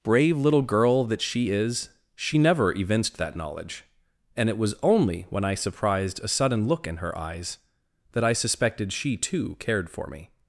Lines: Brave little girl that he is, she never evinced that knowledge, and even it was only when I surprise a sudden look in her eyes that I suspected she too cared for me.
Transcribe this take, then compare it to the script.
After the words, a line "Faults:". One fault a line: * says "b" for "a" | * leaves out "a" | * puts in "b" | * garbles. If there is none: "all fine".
Brave little girl that she is, she never evinced that knowledge, and it was only when I surprised a sudden look in her eyes that I suspected she too cared for me.
Faults:
* says "she" for "he"
* leaves out "even"
* says "surprised" for "surprise"